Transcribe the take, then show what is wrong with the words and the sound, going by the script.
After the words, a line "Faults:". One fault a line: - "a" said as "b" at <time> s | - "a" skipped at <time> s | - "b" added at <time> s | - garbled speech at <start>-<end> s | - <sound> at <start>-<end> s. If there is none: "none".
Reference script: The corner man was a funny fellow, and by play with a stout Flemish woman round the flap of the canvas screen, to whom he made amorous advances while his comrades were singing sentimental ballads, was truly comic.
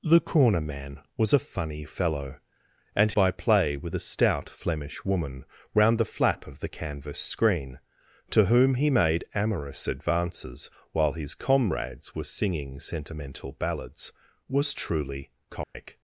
The corner man was a funny fellow, and by play with a stout Flemish woman round the flap of the canvas screen, to whom he made amorous advances while his comrades were singing sentimental ballads, was truly comic.
Faults:
- dropout at 15.6-15.7 s